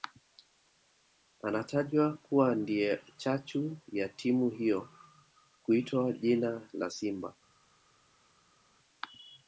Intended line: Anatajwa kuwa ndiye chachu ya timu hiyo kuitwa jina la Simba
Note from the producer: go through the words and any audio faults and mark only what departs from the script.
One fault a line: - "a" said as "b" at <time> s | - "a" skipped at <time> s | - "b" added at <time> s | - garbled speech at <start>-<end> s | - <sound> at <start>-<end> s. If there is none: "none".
none